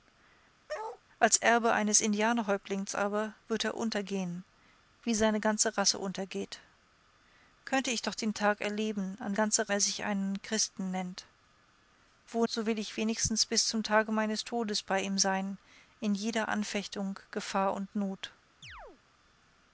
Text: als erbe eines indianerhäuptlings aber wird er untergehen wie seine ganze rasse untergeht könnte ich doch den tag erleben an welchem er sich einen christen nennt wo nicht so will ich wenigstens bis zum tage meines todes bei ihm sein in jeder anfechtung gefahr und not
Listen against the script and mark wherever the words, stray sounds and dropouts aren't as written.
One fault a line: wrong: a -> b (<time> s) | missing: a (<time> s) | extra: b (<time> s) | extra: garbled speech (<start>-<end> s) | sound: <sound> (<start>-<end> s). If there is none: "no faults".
sound: bark (0.7-1.0 s)
wrong: welchem -> ganze (9.3 s)
missing: nicht (12.5 s)
sound: chirp (18.6-19.0 s)